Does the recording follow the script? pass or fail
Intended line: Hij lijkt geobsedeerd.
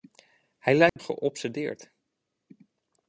pass